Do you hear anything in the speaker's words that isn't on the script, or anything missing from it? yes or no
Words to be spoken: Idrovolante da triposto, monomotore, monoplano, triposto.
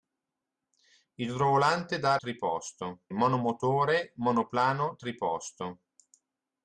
no